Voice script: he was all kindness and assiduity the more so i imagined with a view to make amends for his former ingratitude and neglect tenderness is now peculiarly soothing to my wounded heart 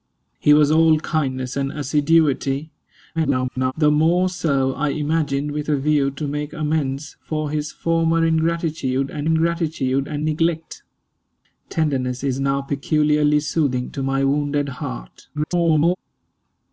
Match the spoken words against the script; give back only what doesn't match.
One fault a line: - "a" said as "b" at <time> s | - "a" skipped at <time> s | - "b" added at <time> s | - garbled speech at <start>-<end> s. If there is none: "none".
- garbled speech at 3.2-3.7 s
- "ingratitude and" added at 9.2 s
- garbled speech at 15.3-16.0 s